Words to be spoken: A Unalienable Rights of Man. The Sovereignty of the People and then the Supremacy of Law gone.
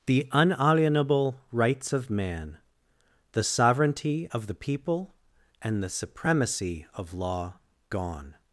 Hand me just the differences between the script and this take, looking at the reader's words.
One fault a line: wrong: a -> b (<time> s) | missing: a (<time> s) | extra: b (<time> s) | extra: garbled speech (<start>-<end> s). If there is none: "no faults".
wrong: A -> The (0.1 s)
missing: then (5.8 s)